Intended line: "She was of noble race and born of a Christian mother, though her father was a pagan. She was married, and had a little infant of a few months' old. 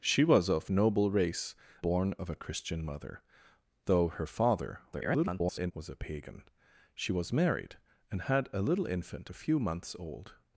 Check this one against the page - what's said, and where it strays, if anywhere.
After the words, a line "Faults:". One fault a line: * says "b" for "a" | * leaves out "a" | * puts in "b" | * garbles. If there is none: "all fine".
"She was of noble race born of a Christian mother, though her father [garbled] was a pagan. She was married, and had a little infant a few months' old.
Faults:
* leaves out "and"
* garbles
* leaves out "of"